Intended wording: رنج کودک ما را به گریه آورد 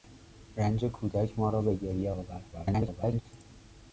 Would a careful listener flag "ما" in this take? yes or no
no